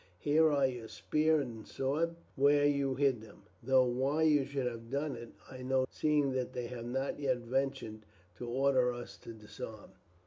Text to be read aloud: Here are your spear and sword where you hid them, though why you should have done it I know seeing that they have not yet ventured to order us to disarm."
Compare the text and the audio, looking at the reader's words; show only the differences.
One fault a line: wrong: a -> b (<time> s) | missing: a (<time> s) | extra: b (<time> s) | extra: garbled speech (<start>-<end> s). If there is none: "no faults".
no faults